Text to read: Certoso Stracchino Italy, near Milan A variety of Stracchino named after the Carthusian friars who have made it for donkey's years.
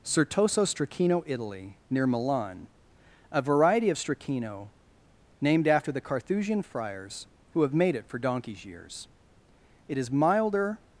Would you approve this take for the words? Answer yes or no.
no